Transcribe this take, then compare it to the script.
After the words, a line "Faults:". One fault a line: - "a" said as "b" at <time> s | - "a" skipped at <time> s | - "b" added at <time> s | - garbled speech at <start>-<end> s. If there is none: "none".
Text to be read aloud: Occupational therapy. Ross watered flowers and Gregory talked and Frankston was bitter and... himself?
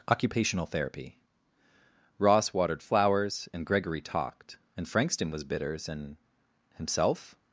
Occupational therapy. Ross watered flowers and Gregory talked and Frankston was bitters and... himself?
Faults:
- "bitter" said as "bitters" at 5.4 s